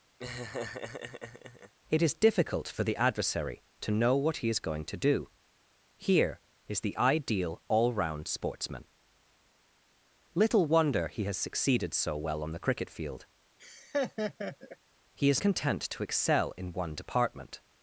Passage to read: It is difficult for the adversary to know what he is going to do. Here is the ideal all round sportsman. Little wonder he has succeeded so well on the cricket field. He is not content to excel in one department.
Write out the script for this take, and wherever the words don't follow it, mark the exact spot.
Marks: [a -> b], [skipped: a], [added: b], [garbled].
It is difficult for the adversary to know what he is going to do. Here is the ideal all round sportsman. Little wonder he has succeeded so well on the cricket field. He is [skipped: not] content to excel in one department.